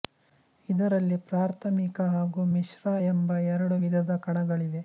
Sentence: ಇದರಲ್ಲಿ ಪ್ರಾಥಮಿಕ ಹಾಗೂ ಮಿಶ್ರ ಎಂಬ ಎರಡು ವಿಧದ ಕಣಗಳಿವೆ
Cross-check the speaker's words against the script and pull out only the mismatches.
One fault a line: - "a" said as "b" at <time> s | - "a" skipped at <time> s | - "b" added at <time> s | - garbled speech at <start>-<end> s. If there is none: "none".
none